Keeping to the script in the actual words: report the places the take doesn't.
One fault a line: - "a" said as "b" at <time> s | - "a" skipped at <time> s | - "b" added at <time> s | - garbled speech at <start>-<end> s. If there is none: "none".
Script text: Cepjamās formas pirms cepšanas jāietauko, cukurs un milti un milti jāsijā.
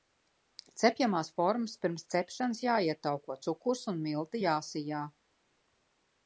- "un milti" skipped at 4.4 s